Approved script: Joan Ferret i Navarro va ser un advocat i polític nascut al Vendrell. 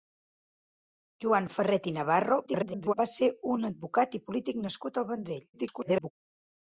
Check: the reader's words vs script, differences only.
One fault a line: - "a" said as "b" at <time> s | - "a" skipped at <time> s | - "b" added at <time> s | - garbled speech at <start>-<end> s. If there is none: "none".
- garbled speech at 2.5-2.9 s
- garbled speech at 5.5-6.1 s